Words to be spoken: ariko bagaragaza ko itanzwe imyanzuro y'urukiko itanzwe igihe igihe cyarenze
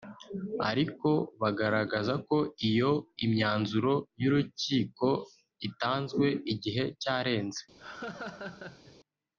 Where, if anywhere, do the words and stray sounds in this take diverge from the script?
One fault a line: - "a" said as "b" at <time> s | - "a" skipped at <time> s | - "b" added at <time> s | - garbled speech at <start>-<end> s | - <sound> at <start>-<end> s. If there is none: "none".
- "itanzwe" said as "iyo" at 2.7 s
- "igihe" skipped at 6.8 s
- laugh at 7.8-9.0 s